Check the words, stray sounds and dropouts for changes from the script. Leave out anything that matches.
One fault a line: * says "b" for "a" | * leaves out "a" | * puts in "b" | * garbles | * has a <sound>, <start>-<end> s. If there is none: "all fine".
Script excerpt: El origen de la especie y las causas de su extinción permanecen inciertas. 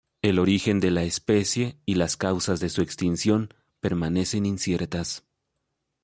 all fine